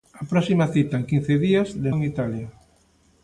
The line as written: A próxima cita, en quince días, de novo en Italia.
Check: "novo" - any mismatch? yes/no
yes